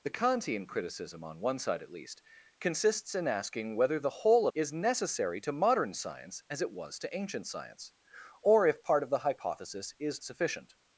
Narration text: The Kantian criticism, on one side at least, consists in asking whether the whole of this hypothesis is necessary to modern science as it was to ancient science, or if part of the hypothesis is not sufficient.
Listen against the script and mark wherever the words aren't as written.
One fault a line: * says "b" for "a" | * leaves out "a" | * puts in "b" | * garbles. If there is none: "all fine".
* leaves out "of this hypothesis"
* leaves out "not"